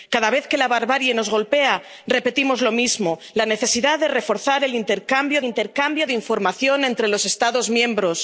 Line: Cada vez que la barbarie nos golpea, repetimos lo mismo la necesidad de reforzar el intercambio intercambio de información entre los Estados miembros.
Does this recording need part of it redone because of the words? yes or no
no